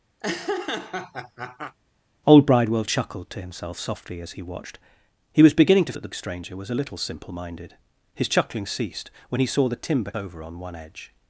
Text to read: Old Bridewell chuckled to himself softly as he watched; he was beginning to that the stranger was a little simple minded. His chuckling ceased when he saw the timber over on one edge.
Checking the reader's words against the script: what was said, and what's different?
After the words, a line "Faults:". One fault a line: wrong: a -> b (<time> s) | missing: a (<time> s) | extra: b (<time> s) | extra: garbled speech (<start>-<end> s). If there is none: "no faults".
Old Bridewell chuckled to himself softly as he watched; he was beginning to that the stranger was a little simple minded. His chuckling ceased when he saw the timber over on one edge.
Faults:
no faults